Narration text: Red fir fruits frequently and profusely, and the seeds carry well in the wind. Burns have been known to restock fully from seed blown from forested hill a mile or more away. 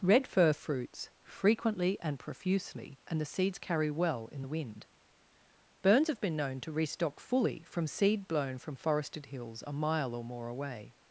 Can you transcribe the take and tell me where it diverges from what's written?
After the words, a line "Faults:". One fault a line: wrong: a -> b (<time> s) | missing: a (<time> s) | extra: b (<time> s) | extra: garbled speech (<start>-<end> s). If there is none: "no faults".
Red fir fruits frequently and profusely, and the seeds carry well in the wind. Burns have been known to restock fully from seed blown from forested hills a mile or more away.
Faults:
wrong: hill -> hills (9.3 s)